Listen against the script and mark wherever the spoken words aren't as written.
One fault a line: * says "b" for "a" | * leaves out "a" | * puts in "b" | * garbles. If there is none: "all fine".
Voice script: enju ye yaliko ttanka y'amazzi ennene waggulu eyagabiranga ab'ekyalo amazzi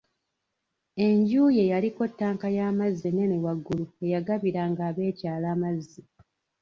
all fine